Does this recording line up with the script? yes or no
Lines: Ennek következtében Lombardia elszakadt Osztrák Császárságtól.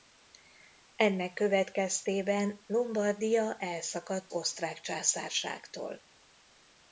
yes